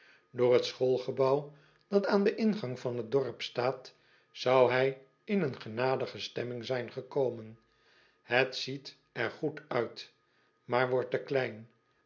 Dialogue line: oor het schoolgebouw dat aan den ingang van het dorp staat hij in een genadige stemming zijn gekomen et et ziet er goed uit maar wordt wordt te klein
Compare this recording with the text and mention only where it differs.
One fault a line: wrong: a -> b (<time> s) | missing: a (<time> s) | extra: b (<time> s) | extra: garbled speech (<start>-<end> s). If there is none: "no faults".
extra: zou (4.3 s)
missing: et (8.6 s)
missing: wordt (11.1 s)